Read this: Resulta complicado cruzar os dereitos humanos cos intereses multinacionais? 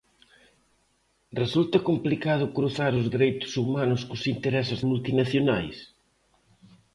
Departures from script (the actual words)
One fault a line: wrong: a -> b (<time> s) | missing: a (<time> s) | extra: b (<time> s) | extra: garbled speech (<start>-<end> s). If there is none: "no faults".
no faults